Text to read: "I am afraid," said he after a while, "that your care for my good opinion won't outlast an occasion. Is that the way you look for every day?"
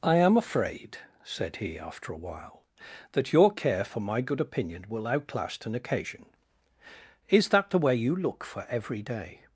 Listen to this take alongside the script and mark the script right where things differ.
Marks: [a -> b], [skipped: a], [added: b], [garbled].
"I am afraid," said he after a while, "that your care for my good opinion [won't -> will] outlast an occasion. Is that the way you look for every day?"